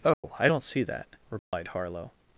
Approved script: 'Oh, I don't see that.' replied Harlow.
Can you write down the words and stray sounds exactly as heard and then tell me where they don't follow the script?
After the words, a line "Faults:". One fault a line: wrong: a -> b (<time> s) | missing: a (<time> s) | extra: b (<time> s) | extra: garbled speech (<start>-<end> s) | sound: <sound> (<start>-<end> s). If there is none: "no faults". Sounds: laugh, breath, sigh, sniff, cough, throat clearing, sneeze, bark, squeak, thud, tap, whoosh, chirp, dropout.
'Oh, I don't see that.' replied Harlow.
Faults:
sound: dropout (0.1-0.2 s)
sound: dropout (1.4-1.5 s)